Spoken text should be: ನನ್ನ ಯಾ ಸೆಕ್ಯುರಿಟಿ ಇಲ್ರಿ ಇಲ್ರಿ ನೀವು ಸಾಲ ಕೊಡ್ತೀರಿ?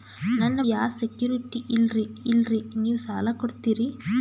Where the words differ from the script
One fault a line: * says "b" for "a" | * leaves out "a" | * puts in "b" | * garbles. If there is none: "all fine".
all fine